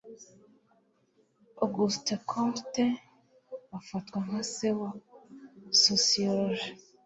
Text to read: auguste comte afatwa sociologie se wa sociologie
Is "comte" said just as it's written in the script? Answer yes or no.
yes